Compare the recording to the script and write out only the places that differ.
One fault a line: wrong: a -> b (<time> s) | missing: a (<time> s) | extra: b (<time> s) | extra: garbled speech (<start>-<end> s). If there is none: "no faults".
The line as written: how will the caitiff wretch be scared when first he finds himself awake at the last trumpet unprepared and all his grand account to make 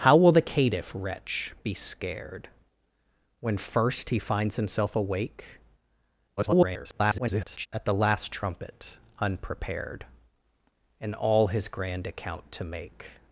extra: garbled speech (6.4-7.7 s)